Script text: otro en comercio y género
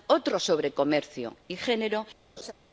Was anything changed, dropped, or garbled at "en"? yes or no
yes